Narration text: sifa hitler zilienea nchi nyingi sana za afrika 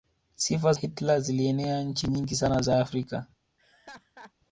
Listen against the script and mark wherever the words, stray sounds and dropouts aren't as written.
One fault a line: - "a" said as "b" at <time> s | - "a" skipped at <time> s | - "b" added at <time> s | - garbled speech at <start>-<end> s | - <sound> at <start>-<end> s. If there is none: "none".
- laugh at 3.6-4.3 s